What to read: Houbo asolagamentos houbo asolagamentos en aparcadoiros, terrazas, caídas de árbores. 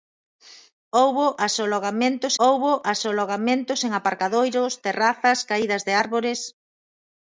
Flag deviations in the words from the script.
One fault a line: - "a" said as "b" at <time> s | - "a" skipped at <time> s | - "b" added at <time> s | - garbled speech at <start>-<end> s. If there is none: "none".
none